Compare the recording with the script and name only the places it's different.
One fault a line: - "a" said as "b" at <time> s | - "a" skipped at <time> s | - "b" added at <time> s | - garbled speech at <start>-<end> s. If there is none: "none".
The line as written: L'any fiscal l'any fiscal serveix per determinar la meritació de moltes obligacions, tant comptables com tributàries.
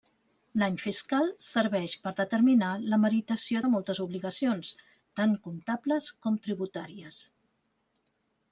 - "l'any fiscal" skipped at 1.3 s